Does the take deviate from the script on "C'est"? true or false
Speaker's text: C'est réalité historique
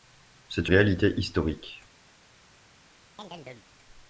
false